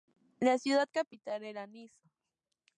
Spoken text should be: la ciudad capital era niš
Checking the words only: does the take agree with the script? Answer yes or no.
yes